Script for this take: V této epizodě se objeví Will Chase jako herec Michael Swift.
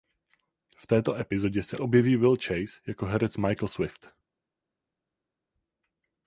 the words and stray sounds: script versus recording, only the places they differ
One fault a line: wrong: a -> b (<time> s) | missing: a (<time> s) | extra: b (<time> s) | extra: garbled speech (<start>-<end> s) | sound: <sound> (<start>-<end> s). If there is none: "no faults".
no faults